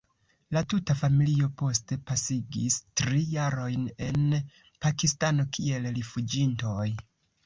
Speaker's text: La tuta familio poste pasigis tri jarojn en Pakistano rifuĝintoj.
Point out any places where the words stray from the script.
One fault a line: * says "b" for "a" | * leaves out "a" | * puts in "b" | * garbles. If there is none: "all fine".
* puts in "kiel"